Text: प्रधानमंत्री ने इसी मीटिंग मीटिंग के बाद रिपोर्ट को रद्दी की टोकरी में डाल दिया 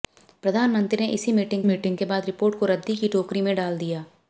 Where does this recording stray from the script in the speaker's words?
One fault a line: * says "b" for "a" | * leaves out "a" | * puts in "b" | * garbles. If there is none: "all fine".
all fine